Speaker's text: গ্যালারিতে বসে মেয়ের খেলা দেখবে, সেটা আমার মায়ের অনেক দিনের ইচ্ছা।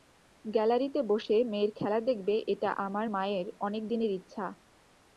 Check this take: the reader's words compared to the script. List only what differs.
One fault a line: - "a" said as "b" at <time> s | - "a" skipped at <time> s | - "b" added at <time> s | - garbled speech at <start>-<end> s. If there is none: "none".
- "সেটা" said as "এটা" at 2.5 s